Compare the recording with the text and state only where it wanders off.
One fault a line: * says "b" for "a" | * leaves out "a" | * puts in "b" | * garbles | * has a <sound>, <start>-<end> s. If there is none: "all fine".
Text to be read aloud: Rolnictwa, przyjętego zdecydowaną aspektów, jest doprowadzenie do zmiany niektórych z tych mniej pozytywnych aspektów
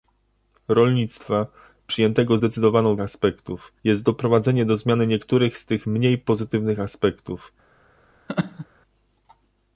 * has a laugh, 8.3-8.7 s